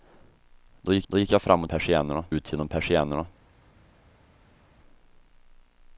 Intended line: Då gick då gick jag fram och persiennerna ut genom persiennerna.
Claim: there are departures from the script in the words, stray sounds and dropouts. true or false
false